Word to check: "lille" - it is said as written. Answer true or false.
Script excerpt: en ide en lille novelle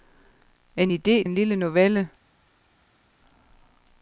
true